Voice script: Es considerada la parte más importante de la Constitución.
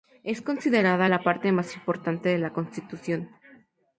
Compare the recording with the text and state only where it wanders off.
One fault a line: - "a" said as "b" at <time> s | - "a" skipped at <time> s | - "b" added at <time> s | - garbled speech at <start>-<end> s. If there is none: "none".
none